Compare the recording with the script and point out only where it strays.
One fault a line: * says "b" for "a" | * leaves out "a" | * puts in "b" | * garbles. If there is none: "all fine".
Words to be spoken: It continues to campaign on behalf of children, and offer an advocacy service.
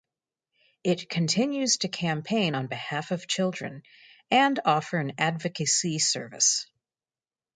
all fine